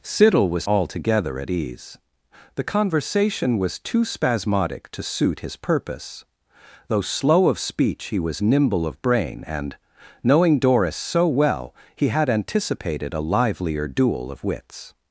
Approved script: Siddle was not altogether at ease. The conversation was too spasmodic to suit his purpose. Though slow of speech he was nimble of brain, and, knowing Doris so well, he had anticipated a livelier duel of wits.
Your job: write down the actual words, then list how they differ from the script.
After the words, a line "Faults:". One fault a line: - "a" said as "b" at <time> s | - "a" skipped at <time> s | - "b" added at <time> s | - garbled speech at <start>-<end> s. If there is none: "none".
Siddle was altogether at ease. The conversation was too spasmodic to suit his purpose. Though slow of speech he was nimble of brain, and, knowing Doris so well, he had anticipated a livelier duel of wits.
Faults:
- "not" skipped at 0.7 s